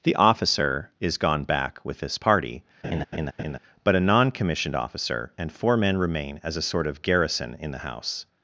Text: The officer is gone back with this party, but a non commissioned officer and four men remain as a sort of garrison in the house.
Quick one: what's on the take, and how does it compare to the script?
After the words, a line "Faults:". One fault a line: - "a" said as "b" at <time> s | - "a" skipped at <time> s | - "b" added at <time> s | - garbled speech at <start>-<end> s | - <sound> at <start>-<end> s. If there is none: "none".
The officer is gone back with this party, but a non commissioned officer and four men remain as a sort of garrison in the house.
Faults:
- laugh at 2.8-3.6 s